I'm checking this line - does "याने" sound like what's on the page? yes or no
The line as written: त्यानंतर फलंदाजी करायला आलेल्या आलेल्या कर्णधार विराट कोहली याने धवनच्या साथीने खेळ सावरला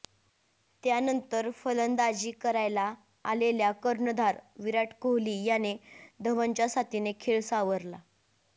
yes